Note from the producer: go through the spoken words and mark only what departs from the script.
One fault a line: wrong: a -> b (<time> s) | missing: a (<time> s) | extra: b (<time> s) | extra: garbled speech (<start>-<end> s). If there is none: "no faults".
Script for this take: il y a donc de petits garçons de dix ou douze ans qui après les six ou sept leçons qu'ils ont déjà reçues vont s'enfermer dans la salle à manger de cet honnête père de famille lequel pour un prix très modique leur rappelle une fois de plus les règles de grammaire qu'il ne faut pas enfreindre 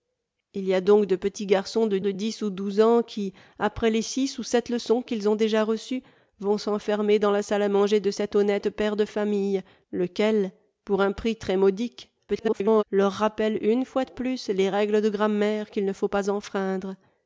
extra: de (2.0 s)
extra: garbled speech (12.3-12.8 s)